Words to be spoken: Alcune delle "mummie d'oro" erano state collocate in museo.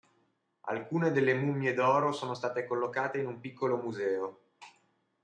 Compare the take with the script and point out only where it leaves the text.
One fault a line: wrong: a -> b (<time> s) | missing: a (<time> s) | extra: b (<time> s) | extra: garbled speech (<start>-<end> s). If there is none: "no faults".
wrong: erano -> sono (2.1 s)
extra: un piccolo (3.3 s)